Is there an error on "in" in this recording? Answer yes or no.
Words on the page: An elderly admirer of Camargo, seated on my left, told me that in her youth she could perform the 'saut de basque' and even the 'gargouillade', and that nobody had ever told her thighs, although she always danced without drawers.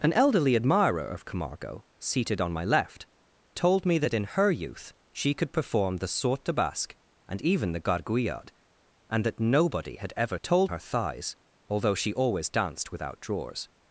no